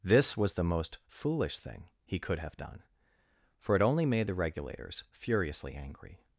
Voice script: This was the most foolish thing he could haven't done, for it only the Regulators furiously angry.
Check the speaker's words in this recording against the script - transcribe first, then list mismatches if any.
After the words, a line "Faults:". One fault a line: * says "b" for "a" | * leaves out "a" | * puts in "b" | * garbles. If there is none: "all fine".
This was the most foolish thing he could have done, for it only made the Regulators furiously angry.
Faults:
* says "have" for "haven't"
* puts in "made"